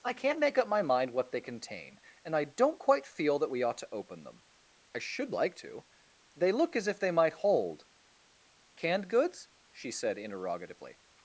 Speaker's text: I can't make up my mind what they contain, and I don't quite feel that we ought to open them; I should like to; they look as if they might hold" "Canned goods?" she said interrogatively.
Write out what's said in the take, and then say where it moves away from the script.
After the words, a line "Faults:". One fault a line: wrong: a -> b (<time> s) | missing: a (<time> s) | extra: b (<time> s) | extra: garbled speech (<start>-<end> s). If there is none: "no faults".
I can't make up my mind what they contain, and I don't quite feel that we ought to open them; I should like to; they look as if they might hold" "Canned goods?" she said interrogatively.
Faults:
no faults